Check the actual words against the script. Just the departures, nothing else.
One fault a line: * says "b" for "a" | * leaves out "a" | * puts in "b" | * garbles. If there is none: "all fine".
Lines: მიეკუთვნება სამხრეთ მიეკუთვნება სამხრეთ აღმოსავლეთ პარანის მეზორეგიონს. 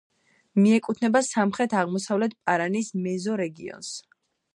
* leaves out "მიეკუთვნება სამხრეთ"